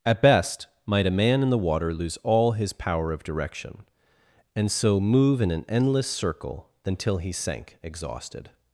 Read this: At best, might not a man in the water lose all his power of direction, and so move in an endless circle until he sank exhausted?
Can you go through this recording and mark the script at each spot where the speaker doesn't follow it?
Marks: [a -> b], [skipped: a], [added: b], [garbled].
At best, might [skipped: not] a man in the water lose all his power of direction, and so move in an endless circle until he sank exhausted?